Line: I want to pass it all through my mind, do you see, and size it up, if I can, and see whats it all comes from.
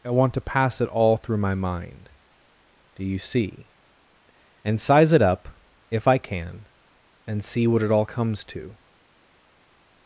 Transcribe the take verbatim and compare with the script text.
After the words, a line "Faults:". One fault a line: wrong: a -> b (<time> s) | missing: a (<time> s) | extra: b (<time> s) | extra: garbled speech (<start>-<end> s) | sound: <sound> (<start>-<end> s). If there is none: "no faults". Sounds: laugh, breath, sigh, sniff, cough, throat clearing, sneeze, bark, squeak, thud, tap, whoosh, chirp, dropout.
I want to pass it all through my mind, do you see, and size it up, if I can, and see what it all comes to.
Faults:
wrong: whats -> what (7.7 s)
wrong: from -> to (8.5 s)